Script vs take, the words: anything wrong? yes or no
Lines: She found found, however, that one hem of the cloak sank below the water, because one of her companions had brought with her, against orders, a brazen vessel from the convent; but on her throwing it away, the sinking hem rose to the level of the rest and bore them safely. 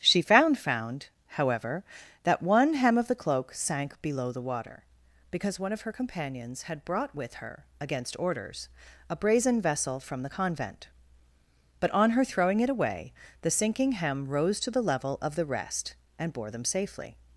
no